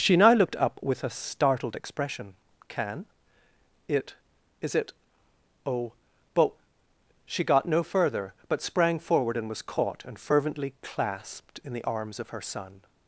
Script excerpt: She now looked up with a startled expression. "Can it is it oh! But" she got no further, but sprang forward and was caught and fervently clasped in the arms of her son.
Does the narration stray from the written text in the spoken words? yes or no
no